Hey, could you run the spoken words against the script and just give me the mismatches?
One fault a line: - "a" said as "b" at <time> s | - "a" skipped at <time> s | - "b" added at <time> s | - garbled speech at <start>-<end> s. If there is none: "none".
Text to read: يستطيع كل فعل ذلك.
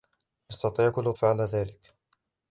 none